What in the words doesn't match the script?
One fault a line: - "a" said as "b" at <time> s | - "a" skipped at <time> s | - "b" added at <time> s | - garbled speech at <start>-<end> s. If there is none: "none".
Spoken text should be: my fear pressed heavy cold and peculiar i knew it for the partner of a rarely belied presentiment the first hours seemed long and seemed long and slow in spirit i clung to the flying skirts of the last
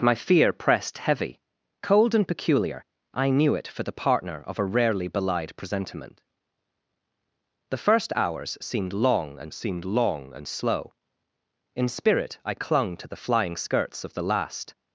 none